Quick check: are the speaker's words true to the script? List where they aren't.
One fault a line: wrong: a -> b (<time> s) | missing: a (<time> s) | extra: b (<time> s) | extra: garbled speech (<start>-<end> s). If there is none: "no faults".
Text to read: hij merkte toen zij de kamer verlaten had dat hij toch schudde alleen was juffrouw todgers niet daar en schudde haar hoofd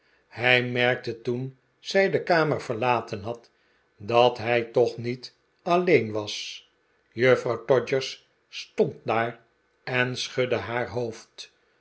wrong: schudde -> niet (5.0 s)
wrong: niet -> stond (8.5 s)